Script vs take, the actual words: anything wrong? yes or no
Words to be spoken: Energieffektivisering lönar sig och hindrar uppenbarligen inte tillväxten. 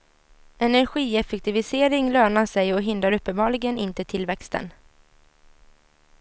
no